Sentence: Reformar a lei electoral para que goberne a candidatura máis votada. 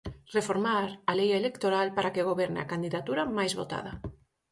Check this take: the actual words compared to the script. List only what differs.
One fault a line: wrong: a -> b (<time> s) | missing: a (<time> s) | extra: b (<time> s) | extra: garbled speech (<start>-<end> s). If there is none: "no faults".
no faults